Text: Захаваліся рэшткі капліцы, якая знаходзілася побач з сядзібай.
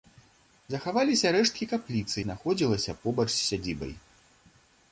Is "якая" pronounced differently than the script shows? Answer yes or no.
yes